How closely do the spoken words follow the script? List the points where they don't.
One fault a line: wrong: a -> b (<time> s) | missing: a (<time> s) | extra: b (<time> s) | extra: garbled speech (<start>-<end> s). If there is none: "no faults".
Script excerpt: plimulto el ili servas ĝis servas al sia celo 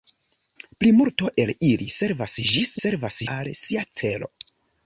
no faults